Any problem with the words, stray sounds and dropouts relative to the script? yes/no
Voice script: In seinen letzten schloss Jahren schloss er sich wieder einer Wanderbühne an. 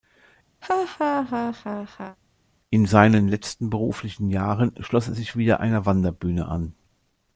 yes